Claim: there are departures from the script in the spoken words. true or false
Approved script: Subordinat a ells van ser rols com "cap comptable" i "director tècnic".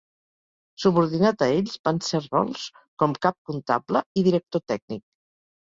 false